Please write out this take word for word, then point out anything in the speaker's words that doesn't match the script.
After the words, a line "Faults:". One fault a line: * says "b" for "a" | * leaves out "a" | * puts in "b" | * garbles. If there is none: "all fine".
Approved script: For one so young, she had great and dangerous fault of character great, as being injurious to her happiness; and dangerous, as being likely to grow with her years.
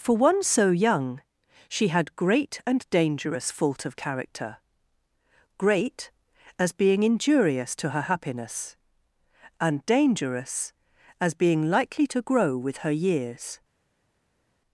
For one so young, she had great and dangerous fault of character great, as being injurious to her happiness; and dangerous, as being likely to grow with her years.
Faults:
all fine